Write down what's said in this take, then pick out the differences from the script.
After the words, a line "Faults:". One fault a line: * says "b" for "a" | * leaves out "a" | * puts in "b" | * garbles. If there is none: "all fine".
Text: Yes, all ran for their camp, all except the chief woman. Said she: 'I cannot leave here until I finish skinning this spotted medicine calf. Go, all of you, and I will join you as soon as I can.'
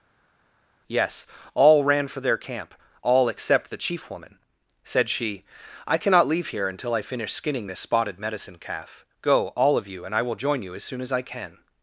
Yes, all ran for their camp, all except the chief woman. Said she: 'I cannot leave here until I finish skinning this spotted medicine calf. Go, all of you, and I will join you as soon as I can.'
Faults:
all fine